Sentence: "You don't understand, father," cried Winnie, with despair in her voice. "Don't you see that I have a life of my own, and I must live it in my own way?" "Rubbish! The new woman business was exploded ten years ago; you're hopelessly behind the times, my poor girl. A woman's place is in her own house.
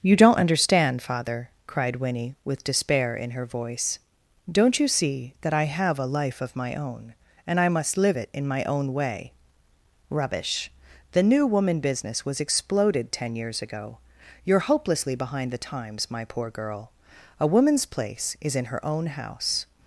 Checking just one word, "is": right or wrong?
right